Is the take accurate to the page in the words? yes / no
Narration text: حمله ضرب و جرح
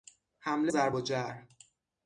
yes